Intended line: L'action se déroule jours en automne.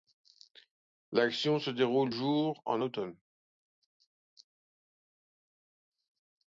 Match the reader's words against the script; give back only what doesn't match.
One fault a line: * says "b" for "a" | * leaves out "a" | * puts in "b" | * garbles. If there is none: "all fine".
all fine